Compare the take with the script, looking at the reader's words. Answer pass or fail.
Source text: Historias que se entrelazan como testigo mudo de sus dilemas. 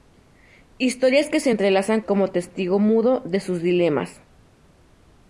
pass